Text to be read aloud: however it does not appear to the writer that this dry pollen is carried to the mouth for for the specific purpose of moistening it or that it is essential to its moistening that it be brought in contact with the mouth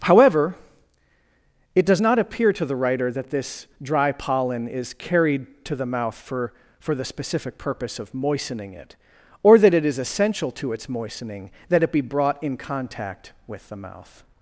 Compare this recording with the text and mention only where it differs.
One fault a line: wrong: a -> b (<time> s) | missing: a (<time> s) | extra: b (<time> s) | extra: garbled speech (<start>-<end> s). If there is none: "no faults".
no faults